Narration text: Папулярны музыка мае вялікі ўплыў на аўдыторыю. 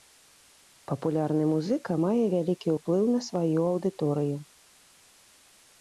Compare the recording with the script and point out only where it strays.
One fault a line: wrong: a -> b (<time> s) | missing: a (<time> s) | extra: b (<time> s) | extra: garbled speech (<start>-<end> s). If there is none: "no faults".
extra: сваю (3.3 s)